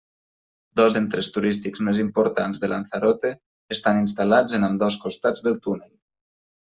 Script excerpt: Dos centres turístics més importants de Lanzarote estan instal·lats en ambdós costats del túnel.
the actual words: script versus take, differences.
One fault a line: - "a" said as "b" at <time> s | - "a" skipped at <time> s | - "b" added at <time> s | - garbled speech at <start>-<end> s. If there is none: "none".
none